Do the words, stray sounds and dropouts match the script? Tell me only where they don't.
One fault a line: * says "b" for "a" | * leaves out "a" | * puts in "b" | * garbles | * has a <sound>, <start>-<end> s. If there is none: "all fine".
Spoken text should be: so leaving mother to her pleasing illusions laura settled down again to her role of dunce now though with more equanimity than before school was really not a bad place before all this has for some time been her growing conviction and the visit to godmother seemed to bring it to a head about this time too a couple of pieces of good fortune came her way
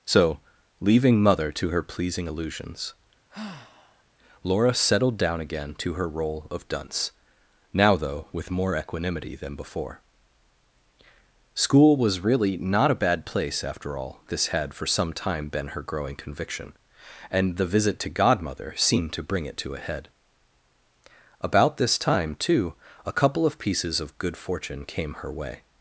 * has a sigh, 3.3-4.0 s
* says "after" for "before"
* says "had" for "has"